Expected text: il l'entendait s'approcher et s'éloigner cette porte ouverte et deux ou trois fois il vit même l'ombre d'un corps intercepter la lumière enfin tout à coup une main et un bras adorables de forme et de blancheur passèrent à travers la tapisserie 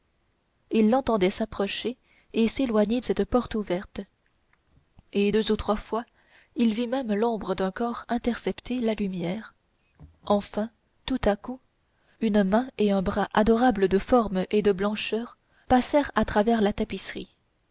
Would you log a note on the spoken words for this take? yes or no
no